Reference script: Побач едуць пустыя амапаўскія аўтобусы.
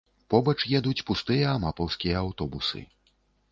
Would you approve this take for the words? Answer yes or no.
yes